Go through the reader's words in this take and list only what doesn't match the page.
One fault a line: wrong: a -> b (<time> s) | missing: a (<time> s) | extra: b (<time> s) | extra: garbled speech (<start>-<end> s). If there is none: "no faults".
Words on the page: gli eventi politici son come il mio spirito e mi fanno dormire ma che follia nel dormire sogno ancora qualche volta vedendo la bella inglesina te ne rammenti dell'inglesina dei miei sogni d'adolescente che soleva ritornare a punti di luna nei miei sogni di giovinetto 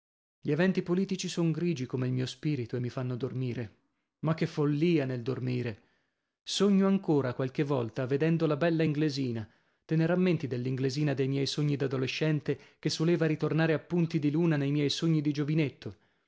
extra: grigi (1.5 s)